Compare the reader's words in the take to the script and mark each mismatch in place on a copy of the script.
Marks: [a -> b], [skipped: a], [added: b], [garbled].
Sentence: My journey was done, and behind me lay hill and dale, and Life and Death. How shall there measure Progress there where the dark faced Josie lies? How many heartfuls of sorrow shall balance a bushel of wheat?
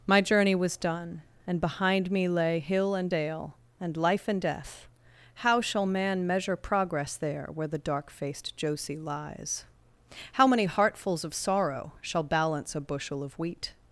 My journey was done, and behind me lay hill and dale, and Life and Death. How shall [there -> man] measure Progress there where the dark faced Josie lies? How many heartfuls of sorrow shall balance a bushel of wheat?